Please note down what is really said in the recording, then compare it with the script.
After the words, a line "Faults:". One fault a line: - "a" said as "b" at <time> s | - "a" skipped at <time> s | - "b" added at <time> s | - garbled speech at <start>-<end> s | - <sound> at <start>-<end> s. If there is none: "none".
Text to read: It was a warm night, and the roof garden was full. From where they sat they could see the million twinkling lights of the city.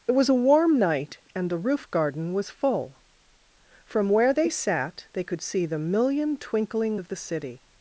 It was a warm night, and the roof garden was full. From where they sat they could see the million twinkling of the city.
Faults:
- "lights" skipped at 7.0 s